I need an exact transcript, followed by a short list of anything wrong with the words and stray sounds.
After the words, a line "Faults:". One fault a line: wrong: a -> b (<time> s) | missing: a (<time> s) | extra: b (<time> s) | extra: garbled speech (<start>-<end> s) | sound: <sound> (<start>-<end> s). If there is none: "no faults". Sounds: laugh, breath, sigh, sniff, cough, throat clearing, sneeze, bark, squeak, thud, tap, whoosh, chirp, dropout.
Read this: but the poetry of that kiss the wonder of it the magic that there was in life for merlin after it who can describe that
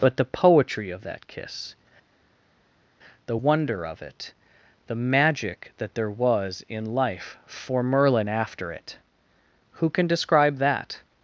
but the poetry of that kiss the wonder of it the magic that there was in life for merlin after it who can describe that
Faults:
no faults